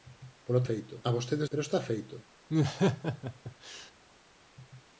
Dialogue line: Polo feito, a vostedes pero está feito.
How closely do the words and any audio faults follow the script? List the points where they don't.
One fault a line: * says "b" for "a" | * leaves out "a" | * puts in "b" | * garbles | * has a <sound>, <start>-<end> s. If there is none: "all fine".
* has a laugh, 2.5-3.9 s